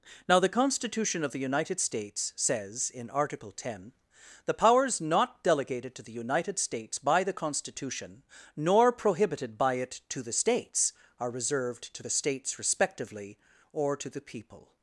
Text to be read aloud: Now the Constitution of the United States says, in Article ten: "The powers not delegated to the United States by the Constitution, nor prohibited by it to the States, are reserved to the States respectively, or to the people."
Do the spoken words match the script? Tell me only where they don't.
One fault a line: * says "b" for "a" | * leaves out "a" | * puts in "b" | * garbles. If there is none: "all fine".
all fine